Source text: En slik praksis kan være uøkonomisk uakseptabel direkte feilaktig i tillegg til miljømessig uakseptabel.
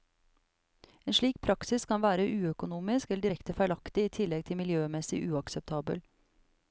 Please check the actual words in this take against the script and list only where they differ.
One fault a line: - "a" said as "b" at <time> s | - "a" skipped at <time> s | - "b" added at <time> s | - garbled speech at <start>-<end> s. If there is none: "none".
- "uakseptabel" said as "eller" at 3.1 s